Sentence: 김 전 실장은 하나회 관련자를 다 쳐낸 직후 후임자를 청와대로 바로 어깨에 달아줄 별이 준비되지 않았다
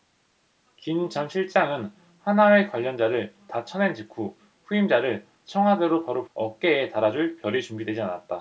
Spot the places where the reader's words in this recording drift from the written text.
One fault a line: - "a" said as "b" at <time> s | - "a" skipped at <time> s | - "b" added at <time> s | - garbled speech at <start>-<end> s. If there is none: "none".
none